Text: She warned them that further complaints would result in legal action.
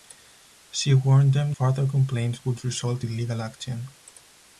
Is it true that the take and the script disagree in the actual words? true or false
true